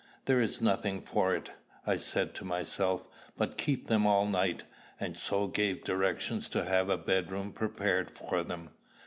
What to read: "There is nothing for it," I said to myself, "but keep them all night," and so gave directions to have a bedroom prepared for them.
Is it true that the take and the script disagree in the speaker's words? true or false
false